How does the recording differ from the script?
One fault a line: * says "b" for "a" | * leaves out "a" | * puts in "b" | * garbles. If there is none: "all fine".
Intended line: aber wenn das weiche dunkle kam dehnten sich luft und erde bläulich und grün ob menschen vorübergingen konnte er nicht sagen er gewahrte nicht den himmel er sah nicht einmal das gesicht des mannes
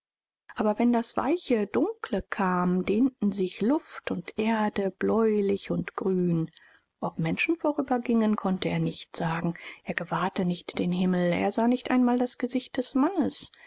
all fine